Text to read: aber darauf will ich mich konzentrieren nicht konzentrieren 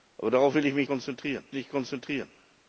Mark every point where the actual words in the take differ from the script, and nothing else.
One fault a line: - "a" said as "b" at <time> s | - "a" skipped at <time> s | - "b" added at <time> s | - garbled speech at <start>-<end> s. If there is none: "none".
none